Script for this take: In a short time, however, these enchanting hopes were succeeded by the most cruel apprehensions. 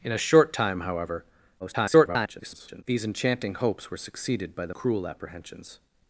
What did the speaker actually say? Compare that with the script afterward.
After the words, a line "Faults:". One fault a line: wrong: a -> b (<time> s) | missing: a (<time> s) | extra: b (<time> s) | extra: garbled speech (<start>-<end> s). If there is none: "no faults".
In a short time, however, [garbled] these enchanting hopes were succeeded by the cruel apprehensions.
Faults:
extra: garbled speech (1.6-2.8 s)
missing: most (4.7 s)